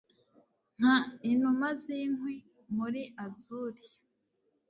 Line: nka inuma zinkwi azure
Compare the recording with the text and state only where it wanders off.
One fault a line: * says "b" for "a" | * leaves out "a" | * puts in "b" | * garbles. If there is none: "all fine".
* puts in "muri"